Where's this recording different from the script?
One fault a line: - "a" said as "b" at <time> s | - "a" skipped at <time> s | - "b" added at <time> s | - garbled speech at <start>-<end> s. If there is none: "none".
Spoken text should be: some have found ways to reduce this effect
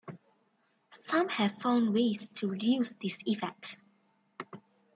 none